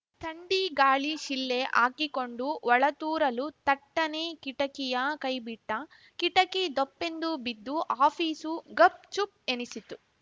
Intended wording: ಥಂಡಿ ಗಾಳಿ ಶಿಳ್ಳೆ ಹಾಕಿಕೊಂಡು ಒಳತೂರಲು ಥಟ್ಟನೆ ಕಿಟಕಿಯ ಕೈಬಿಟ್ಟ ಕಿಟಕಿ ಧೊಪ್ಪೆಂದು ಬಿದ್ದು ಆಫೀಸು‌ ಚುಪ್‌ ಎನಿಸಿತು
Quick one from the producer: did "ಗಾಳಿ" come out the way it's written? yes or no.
yes